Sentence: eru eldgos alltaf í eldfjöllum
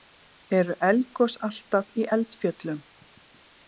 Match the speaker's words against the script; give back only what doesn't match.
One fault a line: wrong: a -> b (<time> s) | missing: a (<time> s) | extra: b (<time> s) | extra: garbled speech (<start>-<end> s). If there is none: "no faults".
no faults